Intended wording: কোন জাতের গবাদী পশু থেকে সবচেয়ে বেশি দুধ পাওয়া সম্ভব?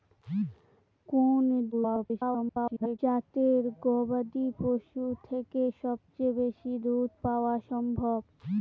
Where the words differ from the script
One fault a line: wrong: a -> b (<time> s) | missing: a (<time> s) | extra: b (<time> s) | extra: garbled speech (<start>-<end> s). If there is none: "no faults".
extra: garbled speech (1.7-3.0 s)